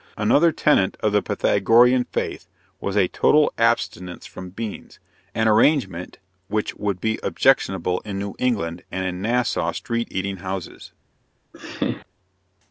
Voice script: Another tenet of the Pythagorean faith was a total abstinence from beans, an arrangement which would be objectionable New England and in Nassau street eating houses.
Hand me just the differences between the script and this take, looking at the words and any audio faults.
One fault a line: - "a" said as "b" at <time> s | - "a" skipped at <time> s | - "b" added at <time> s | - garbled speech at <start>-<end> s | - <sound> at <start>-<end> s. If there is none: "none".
- "in" added at 8.0 s
- laugh at 11.5-12.1 s